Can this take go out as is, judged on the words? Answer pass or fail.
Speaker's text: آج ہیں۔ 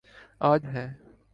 pass